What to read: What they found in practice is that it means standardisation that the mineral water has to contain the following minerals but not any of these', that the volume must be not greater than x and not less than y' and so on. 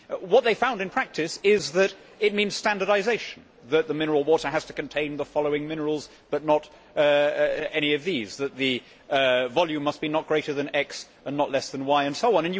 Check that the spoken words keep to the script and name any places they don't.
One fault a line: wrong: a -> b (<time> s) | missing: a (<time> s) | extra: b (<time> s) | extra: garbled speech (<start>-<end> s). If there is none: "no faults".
no faults